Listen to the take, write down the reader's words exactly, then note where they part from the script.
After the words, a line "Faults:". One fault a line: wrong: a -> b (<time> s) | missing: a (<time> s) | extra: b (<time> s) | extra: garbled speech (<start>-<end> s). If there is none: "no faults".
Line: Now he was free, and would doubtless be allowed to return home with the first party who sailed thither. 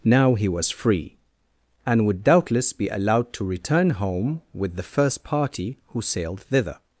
Now he was free, and would doubtless be allowed to return home with the first party who sailed thither.
Faults:
no faults